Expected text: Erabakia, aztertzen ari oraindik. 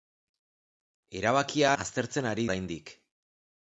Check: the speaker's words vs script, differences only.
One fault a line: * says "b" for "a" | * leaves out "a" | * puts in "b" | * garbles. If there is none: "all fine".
all fine